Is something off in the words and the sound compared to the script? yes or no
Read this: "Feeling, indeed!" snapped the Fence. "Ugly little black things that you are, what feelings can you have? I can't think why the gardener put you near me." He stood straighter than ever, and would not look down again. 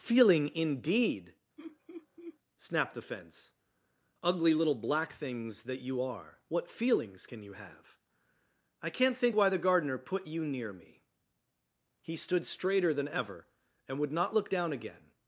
yes